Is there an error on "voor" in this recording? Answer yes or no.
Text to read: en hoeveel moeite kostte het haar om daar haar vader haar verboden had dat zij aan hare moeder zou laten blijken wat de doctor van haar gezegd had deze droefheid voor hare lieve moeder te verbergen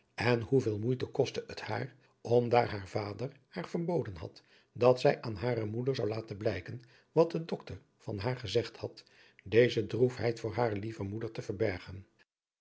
no